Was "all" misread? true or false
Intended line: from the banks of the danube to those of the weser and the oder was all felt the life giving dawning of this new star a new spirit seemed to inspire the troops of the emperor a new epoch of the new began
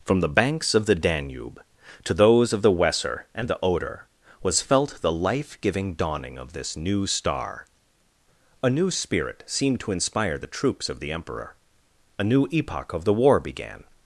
true